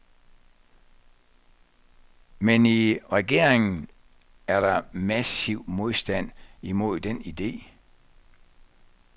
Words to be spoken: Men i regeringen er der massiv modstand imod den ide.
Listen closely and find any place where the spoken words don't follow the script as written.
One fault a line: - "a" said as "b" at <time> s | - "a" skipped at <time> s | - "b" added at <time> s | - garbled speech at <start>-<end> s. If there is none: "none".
none